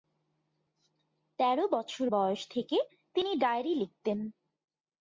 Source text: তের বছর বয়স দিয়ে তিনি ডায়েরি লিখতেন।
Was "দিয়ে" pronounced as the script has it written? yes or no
no